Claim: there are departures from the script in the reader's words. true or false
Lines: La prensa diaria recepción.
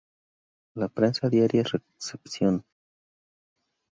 false